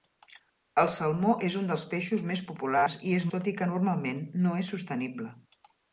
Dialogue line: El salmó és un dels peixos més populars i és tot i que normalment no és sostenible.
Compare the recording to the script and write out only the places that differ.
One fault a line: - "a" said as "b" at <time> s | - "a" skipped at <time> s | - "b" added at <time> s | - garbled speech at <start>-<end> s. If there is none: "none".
none